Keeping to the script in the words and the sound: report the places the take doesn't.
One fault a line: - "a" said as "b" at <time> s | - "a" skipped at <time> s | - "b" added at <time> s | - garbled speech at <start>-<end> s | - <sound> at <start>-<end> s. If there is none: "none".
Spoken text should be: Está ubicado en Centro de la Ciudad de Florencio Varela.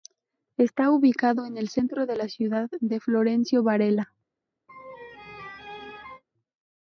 - "el" added at 1.6 s
- laugh at 4.7-6.2 s